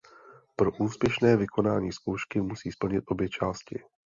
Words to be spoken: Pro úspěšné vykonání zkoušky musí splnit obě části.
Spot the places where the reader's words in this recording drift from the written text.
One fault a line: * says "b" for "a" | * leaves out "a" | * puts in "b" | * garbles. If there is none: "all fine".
all fine